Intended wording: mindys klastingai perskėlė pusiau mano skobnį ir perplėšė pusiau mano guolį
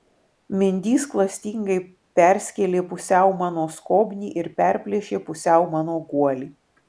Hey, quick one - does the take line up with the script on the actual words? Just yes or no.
yes